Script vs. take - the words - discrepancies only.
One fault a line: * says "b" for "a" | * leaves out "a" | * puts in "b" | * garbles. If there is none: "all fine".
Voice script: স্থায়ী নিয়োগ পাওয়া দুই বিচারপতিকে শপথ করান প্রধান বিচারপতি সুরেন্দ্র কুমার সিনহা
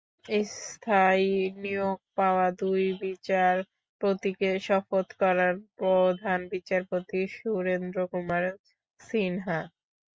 all fine